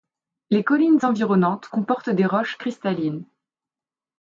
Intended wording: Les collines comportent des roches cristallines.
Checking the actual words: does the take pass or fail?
fail